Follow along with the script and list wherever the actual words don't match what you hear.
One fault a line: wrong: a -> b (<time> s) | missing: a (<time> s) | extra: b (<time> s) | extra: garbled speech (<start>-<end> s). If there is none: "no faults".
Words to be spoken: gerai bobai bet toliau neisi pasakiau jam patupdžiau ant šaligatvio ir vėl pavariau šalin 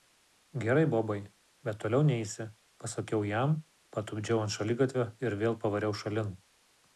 no faults